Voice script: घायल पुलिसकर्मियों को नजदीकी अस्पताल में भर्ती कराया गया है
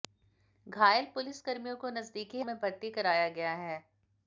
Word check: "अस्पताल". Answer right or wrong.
wrong